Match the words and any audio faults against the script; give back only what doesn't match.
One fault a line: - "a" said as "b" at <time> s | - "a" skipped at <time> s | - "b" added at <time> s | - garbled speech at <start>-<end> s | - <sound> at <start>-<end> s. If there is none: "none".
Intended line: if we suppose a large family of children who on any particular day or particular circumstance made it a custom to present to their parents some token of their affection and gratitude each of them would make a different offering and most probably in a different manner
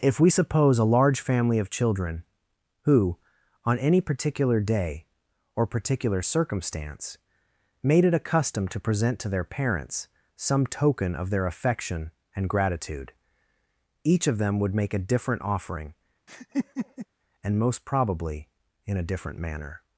- laugh at 16.3-17.1 s